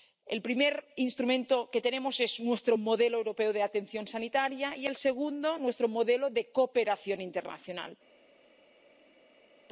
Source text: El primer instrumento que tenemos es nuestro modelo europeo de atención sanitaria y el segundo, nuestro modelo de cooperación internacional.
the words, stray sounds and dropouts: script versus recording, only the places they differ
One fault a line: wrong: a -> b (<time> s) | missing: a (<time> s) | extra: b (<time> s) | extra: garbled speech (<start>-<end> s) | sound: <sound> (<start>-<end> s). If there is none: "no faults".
no faults